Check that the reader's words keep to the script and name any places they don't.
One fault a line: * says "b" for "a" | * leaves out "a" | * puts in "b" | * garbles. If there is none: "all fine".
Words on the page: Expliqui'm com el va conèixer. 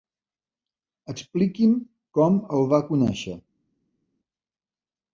all fine